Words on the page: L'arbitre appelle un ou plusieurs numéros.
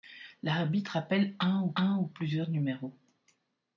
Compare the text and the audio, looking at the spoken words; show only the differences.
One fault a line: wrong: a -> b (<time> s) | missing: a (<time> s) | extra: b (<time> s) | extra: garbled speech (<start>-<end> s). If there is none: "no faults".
extra: un ou (1.8 s)